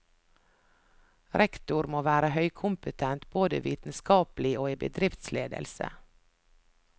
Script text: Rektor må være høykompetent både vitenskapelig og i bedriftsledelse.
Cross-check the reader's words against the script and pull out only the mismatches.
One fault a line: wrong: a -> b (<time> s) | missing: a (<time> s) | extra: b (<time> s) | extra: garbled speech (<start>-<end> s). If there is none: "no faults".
no faults